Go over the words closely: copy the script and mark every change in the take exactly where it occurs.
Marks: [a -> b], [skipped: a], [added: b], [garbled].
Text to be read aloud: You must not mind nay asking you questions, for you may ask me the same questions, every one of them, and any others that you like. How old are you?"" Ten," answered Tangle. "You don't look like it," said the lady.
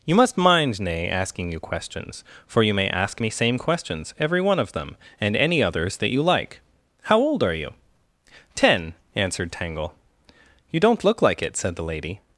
You must [skipped: not] mind nay asking you questions, for you may ask me [skipped: the] same questions, every one of them, and any others that you like. How old are you?"" Ten," answered Tangle. "You don't look like it," said the lady.